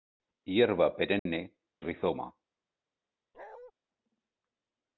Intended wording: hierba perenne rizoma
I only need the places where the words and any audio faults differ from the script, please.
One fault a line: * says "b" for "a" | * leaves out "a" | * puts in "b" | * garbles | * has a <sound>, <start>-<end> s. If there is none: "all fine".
* has a dropout, 1.2-1.3 s
* has a bark, 3.3-3.7 s